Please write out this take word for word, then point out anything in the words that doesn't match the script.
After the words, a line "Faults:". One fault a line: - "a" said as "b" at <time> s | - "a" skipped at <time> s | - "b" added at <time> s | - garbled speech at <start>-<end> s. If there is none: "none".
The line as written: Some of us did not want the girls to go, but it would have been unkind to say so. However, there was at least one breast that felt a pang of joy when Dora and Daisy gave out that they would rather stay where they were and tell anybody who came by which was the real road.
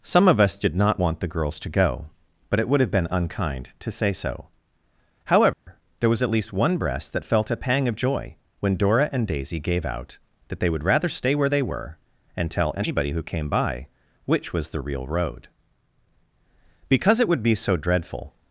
Some of us did not want the girls to go, but it would have been unkind to say so. However, there was at least one breast that felt a pang of joy when Dora and Daisy gave out that they would rather stay where they were and tell anybody who came by which was the real road. 'Because it would be so dreadful
Faults:
- "Because it would be so dreadful" added at 16.9 s